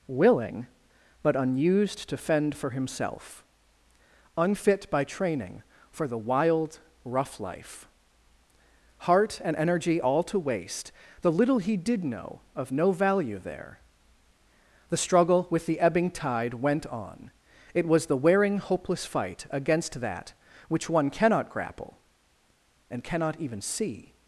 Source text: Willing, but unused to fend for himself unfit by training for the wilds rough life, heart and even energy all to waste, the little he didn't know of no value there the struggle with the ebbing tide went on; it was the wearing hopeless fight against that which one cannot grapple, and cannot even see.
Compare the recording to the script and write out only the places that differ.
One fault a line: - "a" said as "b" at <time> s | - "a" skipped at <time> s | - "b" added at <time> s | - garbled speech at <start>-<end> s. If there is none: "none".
- "wilds" said as "wild" at 6.2 s
- "even" skipped at 9.6 s
- "didn't" said as "did" at 11.7 s